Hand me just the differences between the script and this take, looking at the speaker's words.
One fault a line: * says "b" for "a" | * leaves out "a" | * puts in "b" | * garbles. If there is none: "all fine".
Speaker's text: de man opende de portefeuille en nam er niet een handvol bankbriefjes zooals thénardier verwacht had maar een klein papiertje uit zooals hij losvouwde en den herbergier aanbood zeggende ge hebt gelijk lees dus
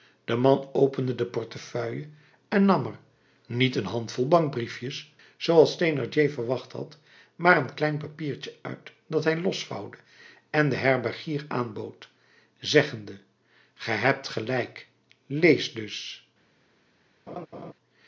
* says "dat" for "zooals"